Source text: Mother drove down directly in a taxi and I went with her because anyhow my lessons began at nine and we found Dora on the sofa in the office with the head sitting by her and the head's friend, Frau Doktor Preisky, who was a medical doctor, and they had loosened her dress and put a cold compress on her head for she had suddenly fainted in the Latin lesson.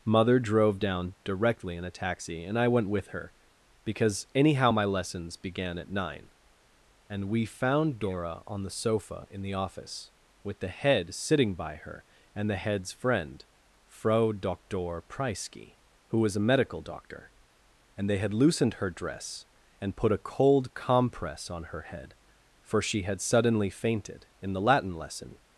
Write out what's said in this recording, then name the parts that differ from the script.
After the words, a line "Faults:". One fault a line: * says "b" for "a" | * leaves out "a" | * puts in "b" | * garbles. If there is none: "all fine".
Mother drove down directly in a taxi and I went with her because anyhow my lessons began at nine and we found Dora on the sofa in the office with the head sitting by her and the head's friend, Frau Doktor Preisky, who was a medical doctor, and they had loosened her dress and put a cold compress on her head for she had suddenly fainted in the Latin lesson.
Faults:
all fine